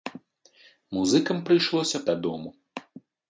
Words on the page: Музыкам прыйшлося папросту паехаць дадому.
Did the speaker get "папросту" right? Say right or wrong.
wrong